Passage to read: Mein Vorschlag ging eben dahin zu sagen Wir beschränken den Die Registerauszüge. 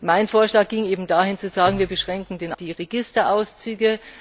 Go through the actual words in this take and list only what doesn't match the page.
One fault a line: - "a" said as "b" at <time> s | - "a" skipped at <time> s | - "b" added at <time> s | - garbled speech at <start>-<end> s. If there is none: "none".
none